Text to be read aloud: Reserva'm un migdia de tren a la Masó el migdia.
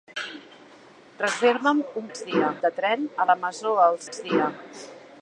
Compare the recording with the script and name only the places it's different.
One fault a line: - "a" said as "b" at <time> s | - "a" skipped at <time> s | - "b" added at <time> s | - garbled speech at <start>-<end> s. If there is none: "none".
none